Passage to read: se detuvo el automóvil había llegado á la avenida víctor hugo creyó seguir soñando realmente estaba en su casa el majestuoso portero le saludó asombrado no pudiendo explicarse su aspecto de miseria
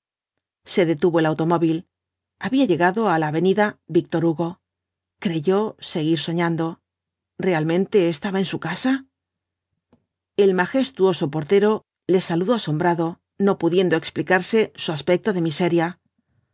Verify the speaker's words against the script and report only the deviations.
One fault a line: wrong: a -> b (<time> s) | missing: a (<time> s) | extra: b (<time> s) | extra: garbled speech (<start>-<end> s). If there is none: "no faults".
no faults